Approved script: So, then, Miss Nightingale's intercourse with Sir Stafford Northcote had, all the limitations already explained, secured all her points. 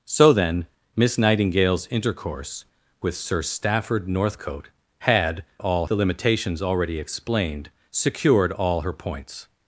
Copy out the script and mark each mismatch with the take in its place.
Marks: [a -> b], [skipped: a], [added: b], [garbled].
So, then, Miss Nightingale's intercourse with Sir Stafford Northcote had, all the limitations already explained, secured all her points.